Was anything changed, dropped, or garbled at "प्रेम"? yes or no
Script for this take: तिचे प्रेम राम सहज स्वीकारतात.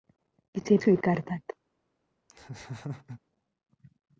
yes